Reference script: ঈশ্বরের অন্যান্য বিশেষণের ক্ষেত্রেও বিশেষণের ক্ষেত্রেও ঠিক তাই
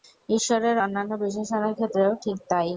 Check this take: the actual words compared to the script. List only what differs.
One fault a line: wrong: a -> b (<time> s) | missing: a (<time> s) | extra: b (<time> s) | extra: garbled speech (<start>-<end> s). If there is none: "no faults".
missing: বিশেষণের ক্ষেত্রেও (2.1 s)